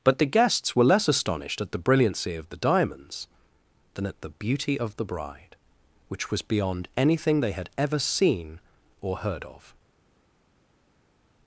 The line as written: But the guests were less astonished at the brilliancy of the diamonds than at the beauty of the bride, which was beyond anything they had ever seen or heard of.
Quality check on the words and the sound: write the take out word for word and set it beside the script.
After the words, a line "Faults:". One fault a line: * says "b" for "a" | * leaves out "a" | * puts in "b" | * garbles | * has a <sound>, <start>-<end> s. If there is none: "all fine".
But the guests were less astonished at the brilliancy of the diamonds than at the beauty of the bride, which was beyond anything they had ever seen or heard of.
Faults:
all fine